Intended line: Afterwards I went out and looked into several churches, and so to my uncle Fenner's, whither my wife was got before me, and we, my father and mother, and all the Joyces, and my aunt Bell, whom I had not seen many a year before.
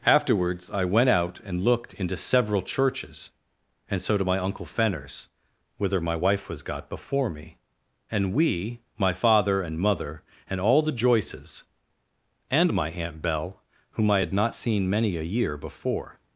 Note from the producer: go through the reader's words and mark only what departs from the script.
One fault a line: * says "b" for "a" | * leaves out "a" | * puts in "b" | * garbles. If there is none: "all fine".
all fine